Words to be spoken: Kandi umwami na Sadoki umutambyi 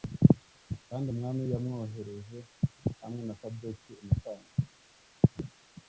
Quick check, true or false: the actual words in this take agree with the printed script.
false